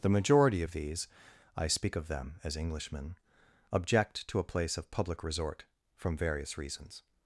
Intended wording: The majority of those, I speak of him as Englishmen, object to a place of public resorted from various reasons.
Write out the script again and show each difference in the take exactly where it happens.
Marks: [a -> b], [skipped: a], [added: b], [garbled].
The majority of [those, -> these] I speak of [him -> them] as Englishmen, object to a place of public [resorted -> resort] from various reasons.